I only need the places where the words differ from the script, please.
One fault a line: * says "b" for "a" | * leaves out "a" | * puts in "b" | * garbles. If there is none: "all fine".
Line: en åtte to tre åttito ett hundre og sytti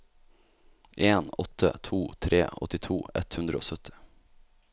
all fine